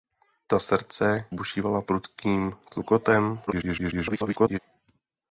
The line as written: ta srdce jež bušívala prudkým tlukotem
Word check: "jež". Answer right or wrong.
wrong